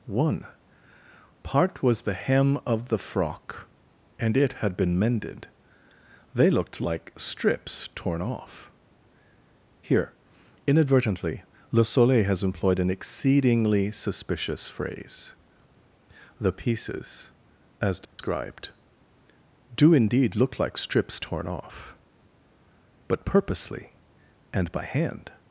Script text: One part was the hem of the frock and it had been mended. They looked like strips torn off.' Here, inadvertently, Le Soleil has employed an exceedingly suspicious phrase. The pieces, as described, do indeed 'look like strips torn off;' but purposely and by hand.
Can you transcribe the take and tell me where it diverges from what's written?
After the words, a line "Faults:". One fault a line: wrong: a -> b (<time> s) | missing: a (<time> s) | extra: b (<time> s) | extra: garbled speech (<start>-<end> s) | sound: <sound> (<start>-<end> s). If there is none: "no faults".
One part was the hem of the frock and it had been mended. They looked like strips torn off.' Here, inadvertently, Le Soleil has employed an exceedingly suspicious phrase. The pieces, as described, do indeed 'look like strips torn off;' but purposely and by hand.
Faults:
sound: dropout (18.0-18.2 s)